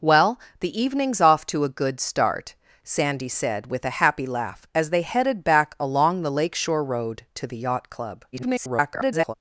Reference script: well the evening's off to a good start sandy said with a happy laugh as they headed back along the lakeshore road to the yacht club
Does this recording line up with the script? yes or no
no